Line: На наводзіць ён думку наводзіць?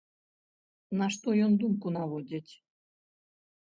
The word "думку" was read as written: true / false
true